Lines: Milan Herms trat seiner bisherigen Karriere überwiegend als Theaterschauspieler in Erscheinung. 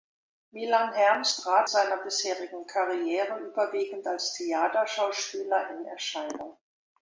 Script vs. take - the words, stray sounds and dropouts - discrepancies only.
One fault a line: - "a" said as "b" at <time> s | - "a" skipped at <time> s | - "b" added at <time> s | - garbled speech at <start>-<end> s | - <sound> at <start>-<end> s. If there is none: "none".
none